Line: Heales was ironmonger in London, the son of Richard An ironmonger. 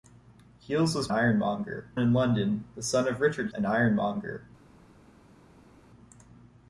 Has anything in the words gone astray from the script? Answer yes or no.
no